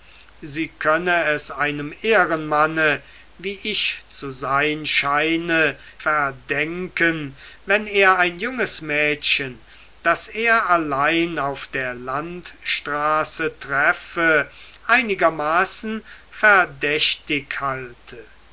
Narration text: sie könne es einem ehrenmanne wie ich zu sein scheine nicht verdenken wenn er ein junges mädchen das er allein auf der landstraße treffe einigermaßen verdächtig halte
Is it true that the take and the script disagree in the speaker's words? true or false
true